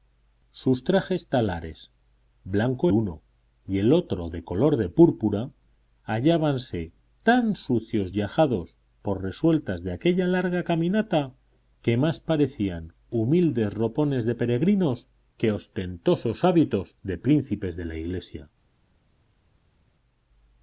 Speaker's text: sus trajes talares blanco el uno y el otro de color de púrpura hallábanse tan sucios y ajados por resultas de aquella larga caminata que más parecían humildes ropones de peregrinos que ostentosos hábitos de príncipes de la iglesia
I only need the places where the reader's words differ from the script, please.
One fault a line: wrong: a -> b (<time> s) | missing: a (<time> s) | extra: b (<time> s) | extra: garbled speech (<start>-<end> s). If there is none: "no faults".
missing: el (2.9 s)